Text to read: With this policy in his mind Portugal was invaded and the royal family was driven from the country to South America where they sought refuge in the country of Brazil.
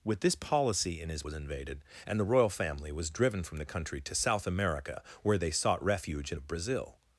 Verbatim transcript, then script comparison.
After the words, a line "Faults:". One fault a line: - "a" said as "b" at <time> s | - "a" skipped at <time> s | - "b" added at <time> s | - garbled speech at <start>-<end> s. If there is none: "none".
With this policy in his was invaded and the royal family was driven from the country to South America where they sought refuge in of Brazil.
Faults:
- "mind Portugal" skipped at 1.3 s
- "the country" skipped at 6.4 s